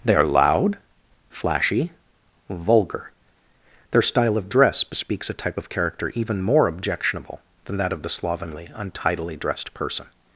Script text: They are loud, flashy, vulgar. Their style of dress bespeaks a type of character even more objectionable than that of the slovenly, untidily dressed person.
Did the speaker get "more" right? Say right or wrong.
right